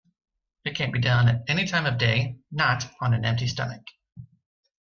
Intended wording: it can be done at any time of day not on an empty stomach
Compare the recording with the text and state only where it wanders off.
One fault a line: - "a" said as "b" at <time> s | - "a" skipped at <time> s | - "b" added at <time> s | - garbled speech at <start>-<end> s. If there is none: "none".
none